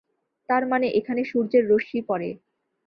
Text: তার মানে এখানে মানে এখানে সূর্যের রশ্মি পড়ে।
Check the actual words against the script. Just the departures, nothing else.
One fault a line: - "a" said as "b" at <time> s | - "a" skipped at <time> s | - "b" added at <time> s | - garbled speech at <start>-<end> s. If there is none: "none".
- "মানে এখানে" skipped at 1.2 s